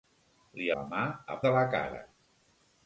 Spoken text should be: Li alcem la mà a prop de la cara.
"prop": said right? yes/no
no